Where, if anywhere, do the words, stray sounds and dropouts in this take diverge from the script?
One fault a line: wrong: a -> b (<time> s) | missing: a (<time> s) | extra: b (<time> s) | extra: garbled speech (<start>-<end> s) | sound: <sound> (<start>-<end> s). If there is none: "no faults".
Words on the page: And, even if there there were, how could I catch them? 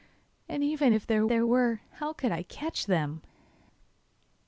no faults